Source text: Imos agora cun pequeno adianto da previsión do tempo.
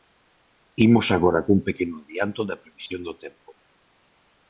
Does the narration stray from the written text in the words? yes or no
no